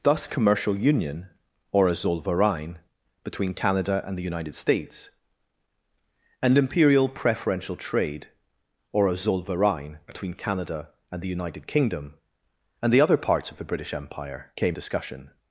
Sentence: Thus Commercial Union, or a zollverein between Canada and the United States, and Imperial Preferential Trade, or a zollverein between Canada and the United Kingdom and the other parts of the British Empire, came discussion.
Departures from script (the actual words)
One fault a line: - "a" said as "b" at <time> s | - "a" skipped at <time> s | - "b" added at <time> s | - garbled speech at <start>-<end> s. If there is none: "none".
none